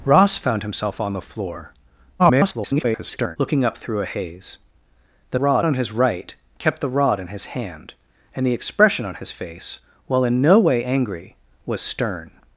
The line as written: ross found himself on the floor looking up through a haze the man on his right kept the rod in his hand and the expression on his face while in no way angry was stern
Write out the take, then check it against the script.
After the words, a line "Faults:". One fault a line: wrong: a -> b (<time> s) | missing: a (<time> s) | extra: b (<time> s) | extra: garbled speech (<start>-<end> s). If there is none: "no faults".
ross found himself on the floor [garbled] looking up through a haze the rod on his right kept the rod in his hand and the expression on his face while in no way angry was stern
Faults:
extra: garbled speech (2.2-3.4 s)
wrong: man -> rod (5.4 s)